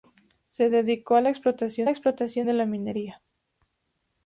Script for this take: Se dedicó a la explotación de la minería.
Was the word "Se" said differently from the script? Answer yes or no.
no